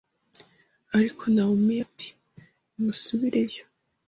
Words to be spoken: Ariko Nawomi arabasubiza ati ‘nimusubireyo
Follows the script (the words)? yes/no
no